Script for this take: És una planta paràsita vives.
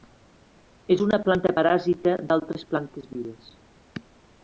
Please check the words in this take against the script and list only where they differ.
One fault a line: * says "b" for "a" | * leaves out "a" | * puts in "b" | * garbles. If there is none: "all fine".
* puts in "d'altres plantes"